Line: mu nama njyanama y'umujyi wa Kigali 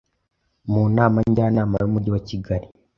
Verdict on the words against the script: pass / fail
pass